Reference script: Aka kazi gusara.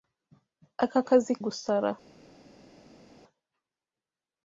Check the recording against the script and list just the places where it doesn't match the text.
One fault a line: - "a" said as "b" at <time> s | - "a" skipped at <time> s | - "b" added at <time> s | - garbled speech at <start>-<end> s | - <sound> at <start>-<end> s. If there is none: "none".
none